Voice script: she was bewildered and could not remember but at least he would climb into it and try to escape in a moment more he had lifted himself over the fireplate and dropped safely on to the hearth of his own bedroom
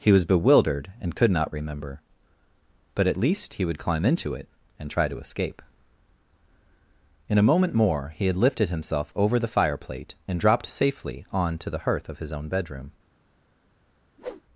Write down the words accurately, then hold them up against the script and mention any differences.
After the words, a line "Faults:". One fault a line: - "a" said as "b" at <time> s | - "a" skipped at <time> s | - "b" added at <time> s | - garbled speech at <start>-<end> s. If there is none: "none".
he was bewildered and could not remember but at least he would climb into it and try to escape in a moment more he had lifted himself over the fireplate and dropped safely on to the hearth of his own bedroom
Faults:
- "she" said as "he" at 0.0 s